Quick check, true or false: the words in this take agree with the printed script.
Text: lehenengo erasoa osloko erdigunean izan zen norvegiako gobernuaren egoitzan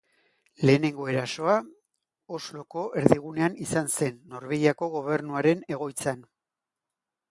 true